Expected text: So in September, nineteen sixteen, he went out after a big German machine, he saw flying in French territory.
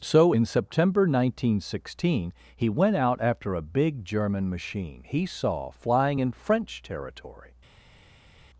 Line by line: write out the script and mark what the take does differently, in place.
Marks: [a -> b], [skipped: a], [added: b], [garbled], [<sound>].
So in September, nineteen sixteen, he went out after a big German machine, he saw flying in French territory.